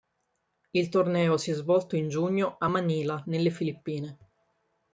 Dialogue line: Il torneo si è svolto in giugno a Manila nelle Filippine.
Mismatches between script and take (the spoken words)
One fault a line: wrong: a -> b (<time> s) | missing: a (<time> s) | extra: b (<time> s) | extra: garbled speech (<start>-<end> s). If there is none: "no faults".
no faults